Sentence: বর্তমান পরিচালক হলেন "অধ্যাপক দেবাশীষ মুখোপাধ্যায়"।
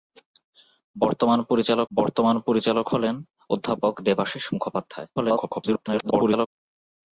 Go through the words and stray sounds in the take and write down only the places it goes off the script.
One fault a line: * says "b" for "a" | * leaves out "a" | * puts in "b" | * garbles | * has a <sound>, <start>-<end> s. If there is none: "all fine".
* puts in "বর্তমান পরিচালক"
* garbles